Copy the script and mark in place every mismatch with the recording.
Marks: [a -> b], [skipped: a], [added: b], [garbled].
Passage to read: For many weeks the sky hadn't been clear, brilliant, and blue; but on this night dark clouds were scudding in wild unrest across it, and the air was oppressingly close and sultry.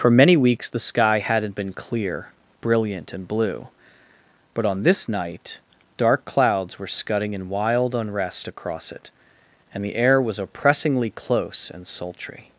For many weeks the sky hadn't been clear, brilliant, and blue; but on this night dark clouds were scudding in wild unrest across it, and the air was oppressingly close and sultry.